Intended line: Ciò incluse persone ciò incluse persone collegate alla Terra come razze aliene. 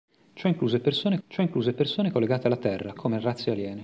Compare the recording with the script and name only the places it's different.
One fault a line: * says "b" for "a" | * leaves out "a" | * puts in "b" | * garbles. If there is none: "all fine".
all fine